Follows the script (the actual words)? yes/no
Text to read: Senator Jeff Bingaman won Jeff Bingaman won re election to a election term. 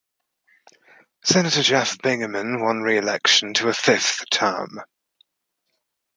no